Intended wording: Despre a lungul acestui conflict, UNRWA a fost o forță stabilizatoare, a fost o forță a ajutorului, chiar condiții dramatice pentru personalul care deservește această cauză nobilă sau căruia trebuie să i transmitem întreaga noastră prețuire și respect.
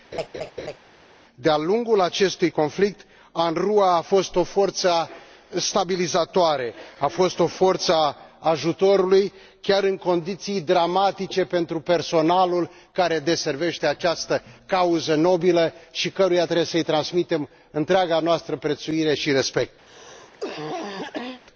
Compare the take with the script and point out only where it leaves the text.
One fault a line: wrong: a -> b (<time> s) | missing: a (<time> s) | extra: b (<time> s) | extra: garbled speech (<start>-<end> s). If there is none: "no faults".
wrong: Despre -> De (1.3 s)
extra: în (9.8 s)
wrong: sau -> și (15.9 s)